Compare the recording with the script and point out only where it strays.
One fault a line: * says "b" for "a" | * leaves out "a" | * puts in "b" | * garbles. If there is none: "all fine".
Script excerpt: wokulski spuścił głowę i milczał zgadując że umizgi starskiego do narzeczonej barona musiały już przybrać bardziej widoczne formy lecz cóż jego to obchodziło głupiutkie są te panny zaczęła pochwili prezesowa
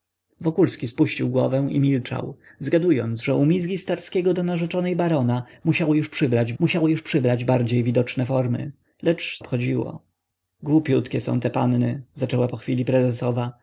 * puts in "musiały już przybrać"
* leaves out "cóż jego to"